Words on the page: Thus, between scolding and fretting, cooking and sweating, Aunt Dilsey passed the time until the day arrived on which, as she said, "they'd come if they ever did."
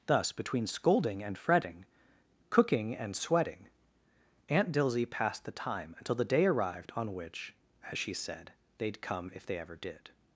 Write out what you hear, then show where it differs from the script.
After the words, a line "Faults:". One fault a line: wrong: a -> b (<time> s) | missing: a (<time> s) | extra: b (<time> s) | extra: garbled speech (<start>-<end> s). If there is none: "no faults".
Thus, between scolding and fretting, cooking and sweating, Aunt Dilsey passed the time until the day arrived on which, as she said, "they'd come if they ever did."
Faults:
no faults